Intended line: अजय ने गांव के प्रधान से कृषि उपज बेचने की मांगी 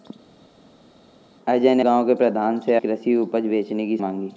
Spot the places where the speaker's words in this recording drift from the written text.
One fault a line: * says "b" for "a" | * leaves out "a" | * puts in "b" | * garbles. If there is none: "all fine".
all fine